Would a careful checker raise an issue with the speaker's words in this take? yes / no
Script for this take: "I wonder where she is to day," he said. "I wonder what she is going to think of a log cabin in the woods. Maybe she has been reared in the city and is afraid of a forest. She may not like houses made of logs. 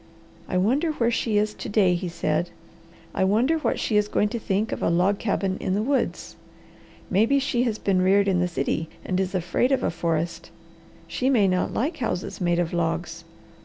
no